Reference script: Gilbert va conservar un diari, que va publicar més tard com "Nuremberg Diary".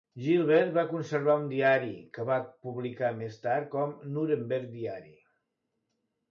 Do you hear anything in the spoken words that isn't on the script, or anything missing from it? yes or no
no